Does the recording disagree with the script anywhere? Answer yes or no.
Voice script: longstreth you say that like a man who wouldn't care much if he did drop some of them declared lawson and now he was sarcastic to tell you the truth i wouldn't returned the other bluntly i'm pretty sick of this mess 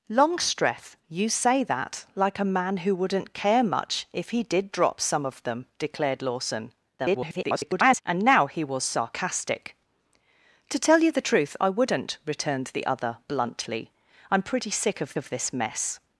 yes